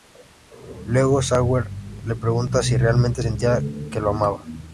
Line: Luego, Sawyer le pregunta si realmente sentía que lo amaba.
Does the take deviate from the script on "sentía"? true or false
false